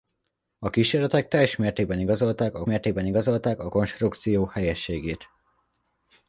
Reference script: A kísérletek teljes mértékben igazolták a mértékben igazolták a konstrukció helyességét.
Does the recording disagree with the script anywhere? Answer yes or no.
no